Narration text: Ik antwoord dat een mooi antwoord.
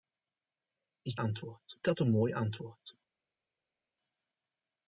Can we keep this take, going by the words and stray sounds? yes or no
yes